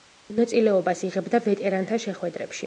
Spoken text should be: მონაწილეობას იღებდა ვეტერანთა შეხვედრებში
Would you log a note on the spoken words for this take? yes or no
no